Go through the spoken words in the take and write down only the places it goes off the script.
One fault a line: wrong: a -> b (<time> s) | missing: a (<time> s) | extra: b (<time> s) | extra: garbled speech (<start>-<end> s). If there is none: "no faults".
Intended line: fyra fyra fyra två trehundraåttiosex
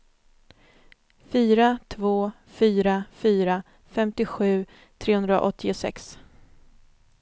extra: två (1.9 s)
wrong: två -> femtiosju (3.9 s)